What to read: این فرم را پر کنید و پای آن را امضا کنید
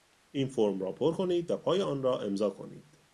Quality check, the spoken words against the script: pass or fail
pass